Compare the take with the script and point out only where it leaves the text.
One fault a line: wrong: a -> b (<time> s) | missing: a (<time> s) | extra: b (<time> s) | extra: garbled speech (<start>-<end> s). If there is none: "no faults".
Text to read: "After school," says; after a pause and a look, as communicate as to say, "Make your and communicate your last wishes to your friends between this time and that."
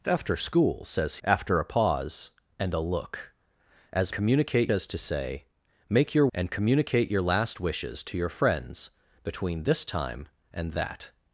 no faults